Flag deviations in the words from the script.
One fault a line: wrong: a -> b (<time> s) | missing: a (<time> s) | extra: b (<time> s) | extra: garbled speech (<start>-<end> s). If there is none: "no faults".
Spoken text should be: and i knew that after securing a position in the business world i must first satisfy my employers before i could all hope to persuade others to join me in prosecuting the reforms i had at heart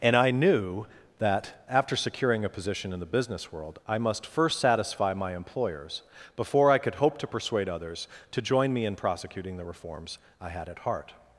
missing: all (7.0 s)